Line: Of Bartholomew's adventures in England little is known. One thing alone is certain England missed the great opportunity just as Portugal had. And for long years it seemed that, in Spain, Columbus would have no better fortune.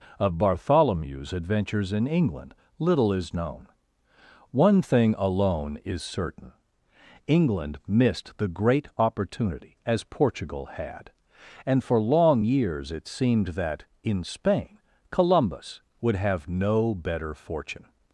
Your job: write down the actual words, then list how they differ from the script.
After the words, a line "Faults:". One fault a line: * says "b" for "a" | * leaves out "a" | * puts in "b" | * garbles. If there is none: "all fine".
Of Bartholomew's adventures in England little is known. One thing alone is certain England missed the great opportunity as Portugal had. And for long years it seemed that, in Spain, Columbus would have no better fortune.
Faults:
* leaves out "just"